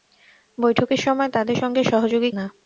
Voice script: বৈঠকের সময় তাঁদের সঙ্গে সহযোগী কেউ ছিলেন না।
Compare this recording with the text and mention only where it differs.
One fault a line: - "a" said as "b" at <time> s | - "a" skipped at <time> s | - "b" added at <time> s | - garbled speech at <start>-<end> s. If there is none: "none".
- "কেউ ছিলেন" skipped at 2.3 s